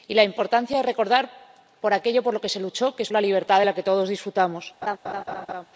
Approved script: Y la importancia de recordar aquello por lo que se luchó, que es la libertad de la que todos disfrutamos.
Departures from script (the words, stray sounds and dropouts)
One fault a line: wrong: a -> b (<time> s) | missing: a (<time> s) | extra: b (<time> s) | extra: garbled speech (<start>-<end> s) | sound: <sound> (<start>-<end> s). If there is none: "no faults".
sound: laugh (4.8-5.7 s)